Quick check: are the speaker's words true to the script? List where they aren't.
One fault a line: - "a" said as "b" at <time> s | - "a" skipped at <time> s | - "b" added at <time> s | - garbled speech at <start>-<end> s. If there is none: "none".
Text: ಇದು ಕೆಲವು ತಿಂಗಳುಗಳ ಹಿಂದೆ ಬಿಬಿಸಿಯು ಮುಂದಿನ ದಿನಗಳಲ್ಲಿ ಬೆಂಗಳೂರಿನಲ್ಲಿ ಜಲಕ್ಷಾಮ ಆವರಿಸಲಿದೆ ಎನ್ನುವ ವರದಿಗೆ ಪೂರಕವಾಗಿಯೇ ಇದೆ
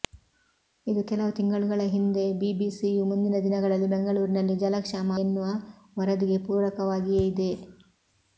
- "ಆವರಿಸಲಿದೆ" skipped at 5.1 s